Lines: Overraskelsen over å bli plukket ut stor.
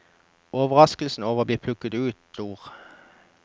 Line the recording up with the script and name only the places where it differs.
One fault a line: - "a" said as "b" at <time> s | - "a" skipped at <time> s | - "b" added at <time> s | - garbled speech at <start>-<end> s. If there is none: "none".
none